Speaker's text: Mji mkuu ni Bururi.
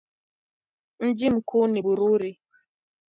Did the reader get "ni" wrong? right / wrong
right